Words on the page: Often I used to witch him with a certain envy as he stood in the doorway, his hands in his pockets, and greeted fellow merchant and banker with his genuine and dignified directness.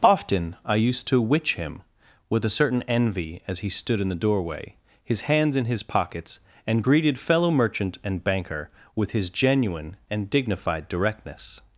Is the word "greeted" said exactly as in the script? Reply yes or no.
yes